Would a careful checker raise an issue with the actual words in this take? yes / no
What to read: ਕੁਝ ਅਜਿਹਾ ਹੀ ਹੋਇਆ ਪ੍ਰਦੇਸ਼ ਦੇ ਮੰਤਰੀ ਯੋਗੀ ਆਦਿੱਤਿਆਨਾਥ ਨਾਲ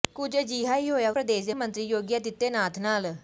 no